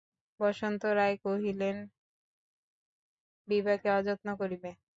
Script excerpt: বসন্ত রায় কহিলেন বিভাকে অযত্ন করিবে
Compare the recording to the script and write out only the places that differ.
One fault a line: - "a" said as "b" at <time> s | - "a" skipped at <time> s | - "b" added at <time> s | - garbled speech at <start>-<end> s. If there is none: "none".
none